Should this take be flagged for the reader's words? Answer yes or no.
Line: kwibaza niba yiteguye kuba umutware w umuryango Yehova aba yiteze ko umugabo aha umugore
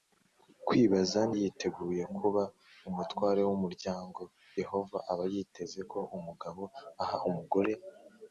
yes